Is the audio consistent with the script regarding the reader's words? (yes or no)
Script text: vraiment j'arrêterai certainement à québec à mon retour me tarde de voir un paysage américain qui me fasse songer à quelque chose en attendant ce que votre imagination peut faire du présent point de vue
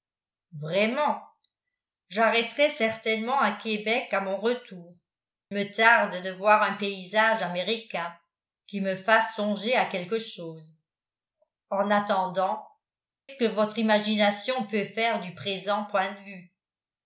yes